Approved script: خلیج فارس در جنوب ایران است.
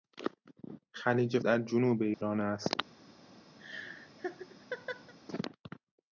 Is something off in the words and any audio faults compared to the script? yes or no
yes